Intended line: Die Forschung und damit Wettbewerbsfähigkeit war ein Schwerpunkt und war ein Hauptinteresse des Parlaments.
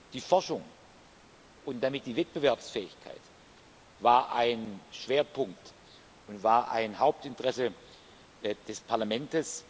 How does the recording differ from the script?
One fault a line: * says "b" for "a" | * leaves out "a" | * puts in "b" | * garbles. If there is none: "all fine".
* puts in "die"